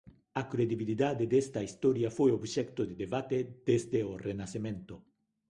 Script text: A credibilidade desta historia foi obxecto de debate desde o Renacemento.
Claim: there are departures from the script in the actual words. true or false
false